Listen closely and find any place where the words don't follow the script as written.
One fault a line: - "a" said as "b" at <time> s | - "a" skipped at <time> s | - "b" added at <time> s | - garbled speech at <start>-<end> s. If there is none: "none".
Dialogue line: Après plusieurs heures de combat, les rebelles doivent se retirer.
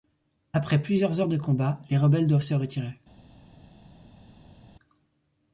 none